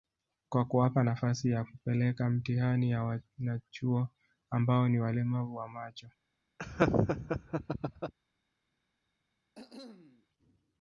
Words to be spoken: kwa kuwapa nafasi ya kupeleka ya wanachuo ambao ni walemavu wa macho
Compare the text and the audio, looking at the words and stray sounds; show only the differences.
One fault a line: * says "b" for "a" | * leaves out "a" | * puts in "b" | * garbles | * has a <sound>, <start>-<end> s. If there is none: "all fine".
* puts in "mtihani"
* has a laugh, 6.6-8.1 s
* has a cough, 9.5-10.3 s